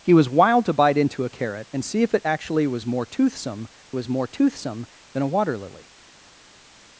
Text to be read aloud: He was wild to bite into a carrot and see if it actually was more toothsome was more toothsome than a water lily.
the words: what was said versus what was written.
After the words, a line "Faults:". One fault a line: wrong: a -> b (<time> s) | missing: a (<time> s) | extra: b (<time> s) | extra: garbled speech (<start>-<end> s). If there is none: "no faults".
He was wild to bite into a carrot and see if it actually was more toothsome was more toothsome than a water lily.
Faults:
no faults